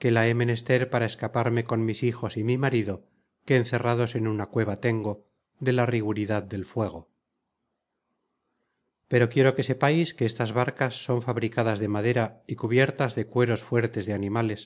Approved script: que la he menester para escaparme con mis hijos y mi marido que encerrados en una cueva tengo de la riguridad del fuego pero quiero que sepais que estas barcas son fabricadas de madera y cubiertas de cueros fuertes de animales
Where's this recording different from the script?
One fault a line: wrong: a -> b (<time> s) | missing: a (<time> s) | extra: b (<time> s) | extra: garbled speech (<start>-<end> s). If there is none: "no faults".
no faults